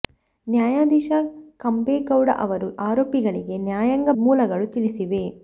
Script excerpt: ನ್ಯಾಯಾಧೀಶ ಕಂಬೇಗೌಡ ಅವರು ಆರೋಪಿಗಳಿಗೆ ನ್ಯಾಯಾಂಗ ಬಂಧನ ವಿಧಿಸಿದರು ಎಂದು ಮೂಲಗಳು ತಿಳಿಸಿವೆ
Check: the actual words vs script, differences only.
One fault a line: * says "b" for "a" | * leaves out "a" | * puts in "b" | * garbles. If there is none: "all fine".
* leaves out "ಬಂಧನ ವಿಧಿಸಿದರು ಎಂದು"